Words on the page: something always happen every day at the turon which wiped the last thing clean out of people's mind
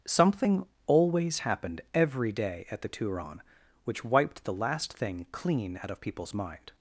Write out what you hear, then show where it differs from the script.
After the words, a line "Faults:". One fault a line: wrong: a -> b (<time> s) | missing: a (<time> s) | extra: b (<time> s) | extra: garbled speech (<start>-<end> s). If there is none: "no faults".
something always happened every day at the turon which wiped the last thing clean out of people's mind
Faults:
wrong: happen -> happened (1.4 s)